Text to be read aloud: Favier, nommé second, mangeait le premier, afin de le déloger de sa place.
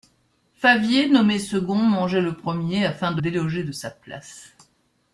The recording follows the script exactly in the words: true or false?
false